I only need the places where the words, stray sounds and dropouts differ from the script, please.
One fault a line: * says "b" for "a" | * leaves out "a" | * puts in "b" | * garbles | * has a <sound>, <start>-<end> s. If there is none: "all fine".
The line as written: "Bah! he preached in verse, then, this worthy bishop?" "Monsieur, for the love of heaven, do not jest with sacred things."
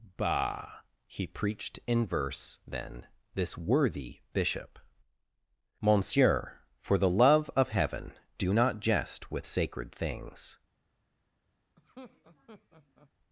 * has a laugh, 11.8-13.1 s